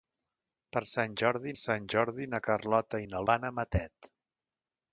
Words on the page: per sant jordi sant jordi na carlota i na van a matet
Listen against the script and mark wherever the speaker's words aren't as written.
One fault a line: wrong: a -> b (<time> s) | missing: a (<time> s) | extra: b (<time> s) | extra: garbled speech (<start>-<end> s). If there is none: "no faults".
no faults